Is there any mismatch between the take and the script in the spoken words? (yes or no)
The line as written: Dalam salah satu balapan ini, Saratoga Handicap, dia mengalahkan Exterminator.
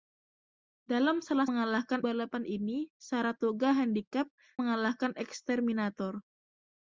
yes